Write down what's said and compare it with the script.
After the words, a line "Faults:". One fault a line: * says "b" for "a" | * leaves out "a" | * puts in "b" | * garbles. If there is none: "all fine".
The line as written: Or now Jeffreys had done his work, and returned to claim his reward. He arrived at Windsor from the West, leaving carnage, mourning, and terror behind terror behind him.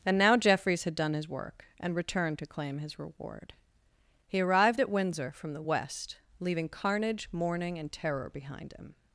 And now Jeffreys had done his work, and returned to claim his reward. He arrived at Windsor from the West, leaving carnage, mourning, and terror behind him.
Faults:
* says "And" for "Or"
* leaves out "terror behind"